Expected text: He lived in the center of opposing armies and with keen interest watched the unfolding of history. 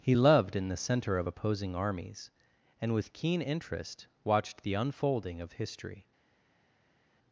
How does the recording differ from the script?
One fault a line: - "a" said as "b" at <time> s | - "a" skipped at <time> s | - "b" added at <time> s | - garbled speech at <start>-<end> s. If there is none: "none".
- "lived" said as "loved" at 0.1 s